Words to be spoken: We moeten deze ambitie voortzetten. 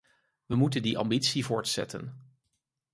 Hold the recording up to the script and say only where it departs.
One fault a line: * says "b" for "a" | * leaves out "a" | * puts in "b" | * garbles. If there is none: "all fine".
* says "die" for "deze"